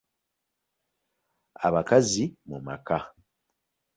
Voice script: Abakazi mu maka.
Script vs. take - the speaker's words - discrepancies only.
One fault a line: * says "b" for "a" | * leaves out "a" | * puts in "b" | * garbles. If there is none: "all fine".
all fine